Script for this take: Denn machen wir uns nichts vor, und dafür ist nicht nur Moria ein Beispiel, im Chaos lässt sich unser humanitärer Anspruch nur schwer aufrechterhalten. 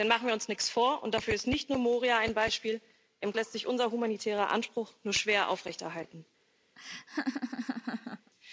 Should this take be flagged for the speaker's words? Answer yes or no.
yes